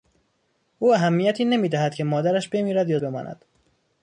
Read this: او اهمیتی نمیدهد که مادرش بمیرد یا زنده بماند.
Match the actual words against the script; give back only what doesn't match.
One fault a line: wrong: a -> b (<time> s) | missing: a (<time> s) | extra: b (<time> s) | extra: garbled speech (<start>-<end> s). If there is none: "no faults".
missing: زنده (3.0 s)